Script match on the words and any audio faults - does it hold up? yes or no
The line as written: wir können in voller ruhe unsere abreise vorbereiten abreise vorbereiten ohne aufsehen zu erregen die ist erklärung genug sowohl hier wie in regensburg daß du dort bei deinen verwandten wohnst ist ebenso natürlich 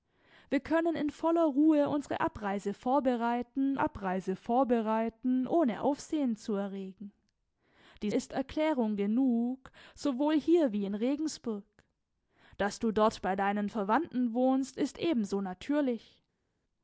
yes